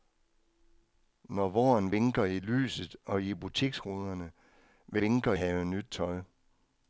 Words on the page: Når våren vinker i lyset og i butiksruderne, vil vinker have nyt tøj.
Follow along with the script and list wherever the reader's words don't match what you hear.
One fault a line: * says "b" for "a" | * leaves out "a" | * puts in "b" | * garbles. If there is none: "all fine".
all fine